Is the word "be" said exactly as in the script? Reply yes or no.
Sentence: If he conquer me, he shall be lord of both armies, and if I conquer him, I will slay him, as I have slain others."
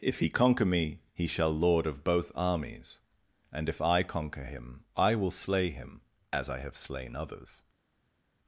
no